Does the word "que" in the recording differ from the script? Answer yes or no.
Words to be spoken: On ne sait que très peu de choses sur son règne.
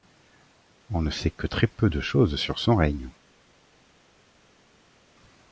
no